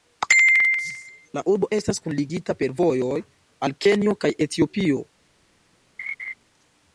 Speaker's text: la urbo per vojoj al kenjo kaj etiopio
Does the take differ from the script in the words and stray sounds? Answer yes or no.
yes